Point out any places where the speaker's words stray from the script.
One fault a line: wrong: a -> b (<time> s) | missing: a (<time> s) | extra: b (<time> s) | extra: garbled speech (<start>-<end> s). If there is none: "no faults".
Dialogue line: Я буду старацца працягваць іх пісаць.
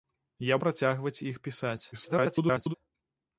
missing: буду старацца (0.6 s)
extra: garbled speech (1.9-2.7 s)